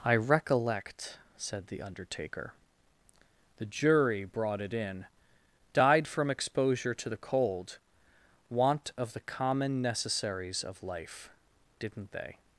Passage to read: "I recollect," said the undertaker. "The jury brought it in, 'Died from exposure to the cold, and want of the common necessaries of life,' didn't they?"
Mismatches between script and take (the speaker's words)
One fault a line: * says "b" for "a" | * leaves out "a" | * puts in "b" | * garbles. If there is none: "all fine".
* leaves out "and"